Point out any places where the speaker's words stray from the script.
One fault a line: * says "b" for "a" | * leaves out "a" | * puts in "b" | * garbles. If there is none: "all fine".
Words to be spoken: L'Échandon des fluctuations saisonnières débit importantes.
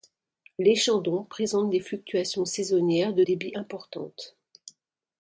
* puts in "présente"
* puts in "de"